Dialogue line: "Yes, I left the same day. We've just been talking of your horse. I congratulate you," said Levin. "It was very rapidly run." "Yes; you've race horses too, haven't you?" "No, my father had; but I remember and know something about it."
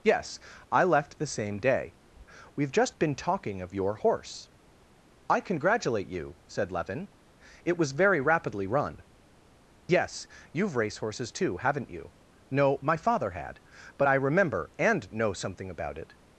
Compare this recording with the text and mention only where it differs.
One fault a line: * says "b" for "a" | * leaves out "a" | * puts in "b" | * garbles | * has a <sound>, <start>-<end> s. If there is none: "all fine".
all fine